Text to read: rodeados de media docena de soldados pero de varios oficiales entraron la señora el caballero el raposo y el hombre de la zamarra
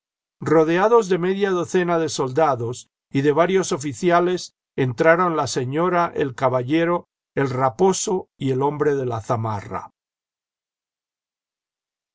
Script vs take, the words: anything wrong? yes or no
yes